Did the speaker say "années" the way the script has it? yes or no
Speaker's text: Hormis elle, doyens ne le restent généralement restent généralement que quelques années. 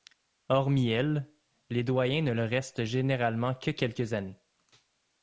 yes